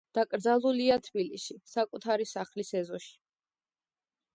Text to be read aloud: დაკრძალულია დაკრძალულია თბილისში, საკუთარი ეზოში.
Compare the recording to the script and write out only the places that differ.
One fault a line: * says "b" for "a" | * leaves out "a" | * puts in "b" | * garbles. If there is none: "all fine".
* leaves out "დაკრძალულია"
* puts in "სახლის"